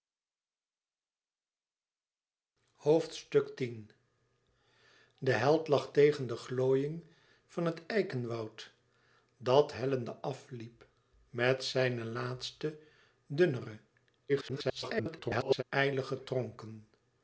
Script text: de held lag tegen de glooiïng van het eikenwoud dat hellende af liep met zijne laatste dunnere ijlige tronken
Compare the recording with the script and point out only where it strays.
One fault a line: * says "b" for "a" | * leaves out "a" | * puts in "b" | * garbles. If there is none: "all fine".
* garbles